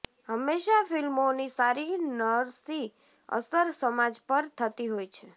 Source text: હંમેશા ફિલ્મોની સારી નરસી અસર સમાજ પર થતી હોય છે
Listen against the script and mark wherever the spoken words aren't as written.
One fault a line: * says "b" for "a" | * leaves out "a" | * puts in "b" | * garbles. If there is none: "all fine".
all fine